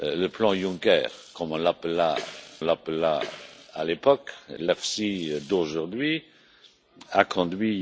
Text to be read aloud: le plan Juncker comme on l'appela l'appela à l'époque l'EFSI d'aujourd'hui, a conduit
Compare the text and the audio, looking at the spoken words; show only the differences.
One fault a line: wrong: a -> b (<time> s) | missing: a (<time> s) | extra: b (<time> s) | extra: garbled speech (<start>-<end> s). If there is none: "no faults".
no faults